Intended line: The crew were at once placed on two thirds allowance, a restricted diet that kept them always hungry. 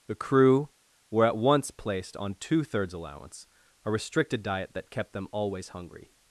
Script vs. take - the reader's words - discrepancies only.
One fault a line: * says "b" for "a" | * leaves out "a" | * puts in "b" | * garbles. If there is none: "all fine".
all fine